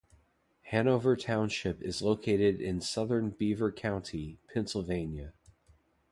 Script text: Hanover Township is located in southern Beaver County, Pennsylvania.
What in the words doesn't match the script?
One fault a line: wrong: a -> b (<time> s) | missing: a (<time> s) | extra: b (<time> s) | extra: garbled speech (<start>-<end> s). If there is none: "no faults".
no faults